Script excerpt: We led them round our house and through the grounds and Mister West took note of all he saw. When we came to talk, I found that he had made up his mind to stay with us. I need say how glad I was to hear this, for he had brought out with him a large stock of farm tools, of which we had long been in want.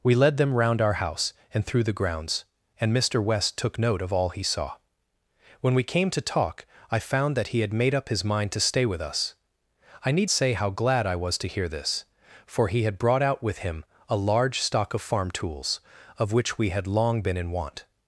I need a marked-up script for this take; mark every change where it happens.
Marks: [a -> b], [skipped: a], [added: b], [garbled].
We led them round our house and through the grounds and Mister West took note of all he saw. When we came to talk, I found that he had made up his mind to stay with us. I need say how glad I was to hear this, for he had brought out with him a large stock of farm tools, of which we had long been in want.